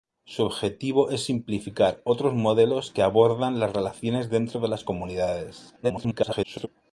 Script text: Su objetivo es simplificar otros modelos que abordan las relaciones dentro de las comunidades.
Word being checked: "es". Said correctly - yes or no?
yes